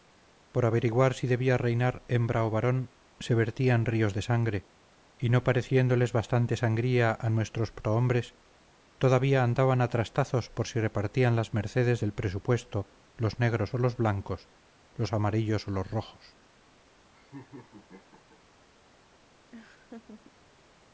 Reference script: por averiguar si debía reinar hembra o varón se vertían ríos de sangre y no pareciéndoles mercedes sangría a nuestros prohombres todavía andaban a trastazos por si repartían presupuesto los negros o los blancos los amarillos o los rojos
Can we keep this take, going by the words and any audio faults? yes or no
no